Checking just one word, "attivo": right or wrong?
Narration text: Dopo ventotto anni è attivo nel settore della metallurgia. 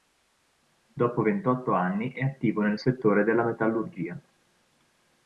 right